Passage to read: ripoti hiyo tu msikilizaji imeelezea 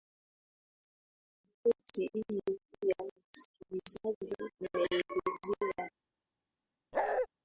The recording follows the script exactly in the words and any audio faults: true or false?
false